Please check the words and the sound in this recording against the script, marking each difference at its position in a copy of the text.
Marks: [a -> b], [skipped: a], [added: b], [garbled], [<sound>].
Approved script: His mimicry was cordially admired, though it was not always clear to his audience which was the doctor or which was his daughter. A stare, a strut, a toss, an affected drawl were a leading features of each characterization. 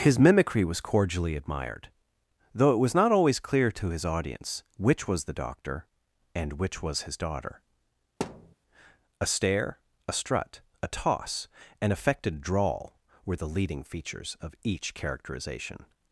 His mimicry was cordially admired, though it was not always clear to his audience which was the doctor [or -> and] which was his daughter. [thud] A stare, a strut, a toss, an affected drawl were [a -> the] leading features of each characterization.